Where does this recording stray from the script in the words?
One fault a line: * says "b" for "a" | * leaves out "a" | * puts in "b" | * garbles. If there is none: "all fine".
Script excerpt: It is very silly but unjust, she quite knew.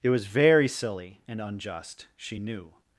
* says "was" for "is"
* says "and" for "but"
* leaves out "quite"